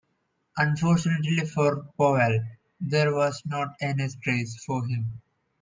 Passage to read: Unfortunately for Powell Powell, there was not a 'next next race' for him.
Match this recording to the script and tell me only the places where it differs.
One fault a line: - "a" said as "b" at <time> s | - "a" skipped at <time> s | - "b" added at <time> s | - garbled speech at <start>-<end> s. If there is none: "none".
- "Powell" skipped at 2.4 s
- "next" skipped at 4.2 s